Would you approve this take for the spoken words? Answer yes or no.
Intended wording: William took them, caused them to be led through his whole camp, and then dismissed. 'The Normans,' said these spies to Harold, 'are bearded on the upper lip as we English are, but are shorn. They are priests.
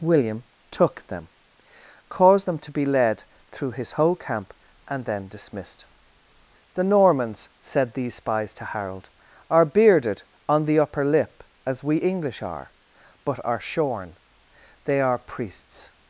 yes